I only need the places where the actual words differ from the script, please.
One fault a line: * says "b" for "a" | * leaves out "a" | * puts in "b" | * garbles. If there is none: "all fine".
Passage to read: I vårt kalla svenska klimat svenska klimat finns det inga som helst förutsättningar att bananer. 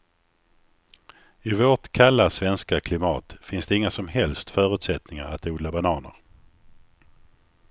* leaves out "svenska klimat"
* puts in "odla"